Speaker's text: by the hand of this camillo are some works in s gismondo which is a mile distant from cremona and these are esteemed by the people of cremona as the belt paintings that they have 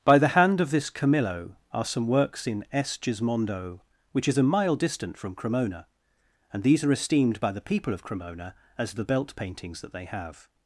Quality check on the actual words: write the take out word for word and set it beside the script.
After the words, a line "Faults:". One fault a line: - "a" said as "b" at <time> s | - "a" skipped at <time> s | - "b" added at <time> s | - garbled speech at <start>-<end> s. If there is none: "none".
by the hand of this camillo are some works in s gismondo which is a mile distant from cremona and these are esteemed by the people of cremona as the belt paintings that they have
Faults:
none